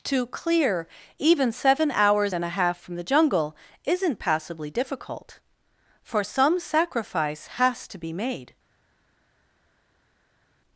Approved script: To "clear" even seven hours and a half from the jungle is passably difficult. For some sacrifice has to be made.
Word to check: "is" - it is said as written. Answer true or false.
false